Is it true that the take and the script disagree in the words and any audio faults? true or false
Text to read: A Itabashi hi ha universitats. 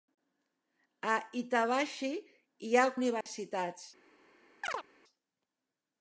true